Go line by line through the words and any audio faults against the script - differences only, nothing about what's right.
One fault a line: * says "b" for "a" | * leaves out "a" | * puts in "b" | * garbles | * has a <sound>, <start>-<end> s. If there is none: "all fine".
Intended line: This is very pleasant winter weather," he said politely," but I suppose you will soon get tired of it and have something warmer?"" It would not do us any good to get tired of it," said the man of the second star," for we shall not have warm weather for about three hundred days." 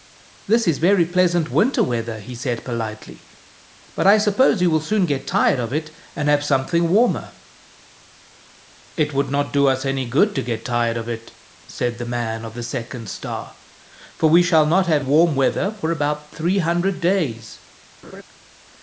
* has a laugh, 18.0-18.2 s